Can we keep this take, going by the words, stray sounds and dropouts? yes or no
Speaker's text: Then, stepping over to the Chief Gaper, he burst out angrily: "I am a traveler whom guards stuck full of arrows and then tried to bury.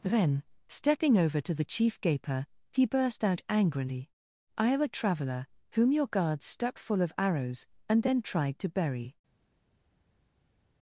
no